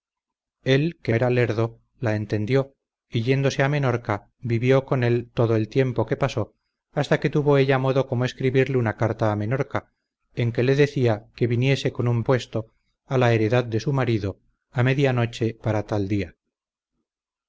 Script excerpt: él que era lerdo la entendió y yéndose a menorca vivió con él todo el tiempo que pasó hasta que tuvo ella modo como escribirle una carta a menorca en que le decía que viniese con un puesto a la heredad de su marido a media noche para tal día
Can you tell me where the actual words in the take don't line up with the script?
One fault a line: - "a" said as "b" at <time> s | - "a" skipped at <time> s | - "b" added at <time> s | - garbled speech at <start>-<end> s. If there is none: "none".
none